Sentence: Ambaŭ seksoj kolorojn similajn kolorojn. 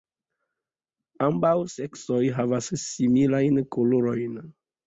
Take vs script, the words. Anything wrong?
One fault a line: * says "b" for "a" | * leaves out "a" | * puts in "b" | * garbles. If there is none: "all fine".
* says "havas" for "kolorojn"